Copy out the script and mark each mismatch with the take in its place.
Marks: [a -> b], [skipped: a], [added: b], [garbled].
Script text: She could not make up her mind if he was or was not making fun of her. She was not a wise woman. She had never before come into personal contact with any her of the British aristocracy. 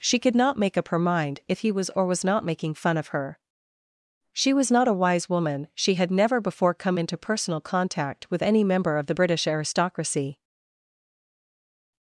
She could not make up her mind if he was or was not making fun of her. She was not a wise woman. She had never before come into personal contact with any [her -> member] of the British aristocracy.